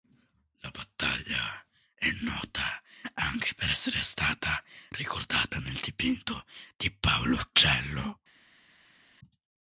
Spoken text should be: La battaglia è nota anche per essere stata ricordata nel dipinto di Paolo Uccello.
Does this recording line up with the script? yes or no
yes